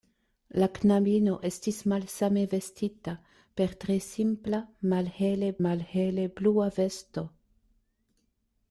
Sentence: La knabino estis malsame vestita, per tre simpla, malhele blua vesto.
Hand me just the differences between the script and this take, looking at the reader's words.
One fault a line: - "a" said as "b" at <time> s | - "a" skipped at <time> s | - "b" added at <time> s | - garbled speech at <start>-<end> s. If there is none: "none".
- "malhele" added at 5.7 s